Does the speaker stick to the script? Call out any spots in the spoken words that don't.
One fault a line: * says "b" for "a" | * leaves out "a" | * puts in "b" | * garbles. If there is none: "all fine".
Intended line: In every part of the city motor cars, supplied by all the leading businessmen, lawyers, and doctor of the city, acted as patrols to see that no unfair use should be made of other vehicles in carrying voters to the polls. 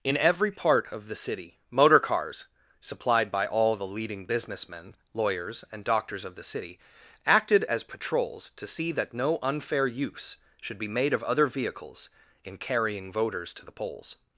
* says "doctors" for "doctor"